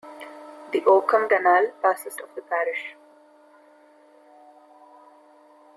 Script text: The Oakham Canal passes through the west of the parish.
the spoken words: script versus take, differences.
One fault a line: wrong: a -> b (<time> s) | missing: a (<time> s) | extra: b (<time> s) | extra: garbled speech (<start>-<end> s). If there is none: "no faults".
missing: through the west (2.1 s)